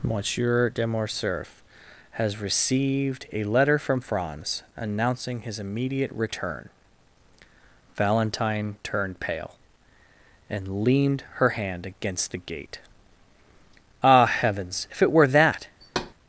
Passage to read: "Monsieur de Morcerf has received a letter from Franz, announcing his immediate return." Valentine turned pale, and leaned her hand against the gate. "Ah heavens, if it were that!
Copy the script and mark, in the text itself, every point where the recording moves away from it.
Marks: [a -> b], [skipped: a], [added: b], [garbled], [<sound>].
"Monsieur de Morcerf has received a letter from Franz, announcing his immediate return." Valentine turned pale, and leaned her hand against the gate. "Ah heavens, if it were that! [thud]